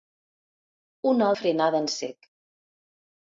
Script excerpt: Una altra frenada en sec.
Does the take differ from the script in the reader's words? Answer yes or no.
yes